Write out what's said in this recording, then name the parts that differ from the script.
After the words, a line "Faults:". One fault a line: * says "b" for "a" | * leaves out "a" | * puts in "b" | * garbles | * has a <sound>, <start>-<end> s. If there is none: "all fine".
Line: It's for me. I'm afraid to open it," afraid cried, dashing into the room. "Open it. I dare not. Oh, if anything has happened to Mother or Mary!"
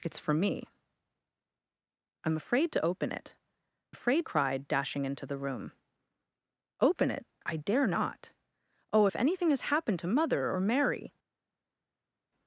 It's for me. I'm afraid to open it," afraid cried, dashing into the room. "Open it. I dare not. Oh, if anything has happened to Mother or Mary!"
Faults:
all fine